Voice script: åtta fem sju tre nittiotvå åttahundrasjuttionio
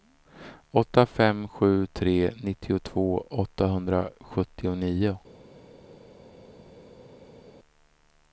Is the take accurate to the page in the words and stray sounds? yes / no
yes